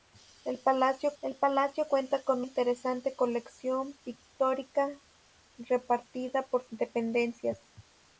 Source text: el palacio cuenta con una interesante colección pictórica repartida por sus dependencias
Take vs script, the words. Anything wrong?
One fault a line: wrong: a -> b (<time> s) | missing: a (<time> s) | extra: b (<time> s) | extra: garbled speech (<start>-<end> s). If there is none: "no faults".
extra: el palacio (1.2 s)
missing: una (2.5 s)
missing: sus (6.6 s)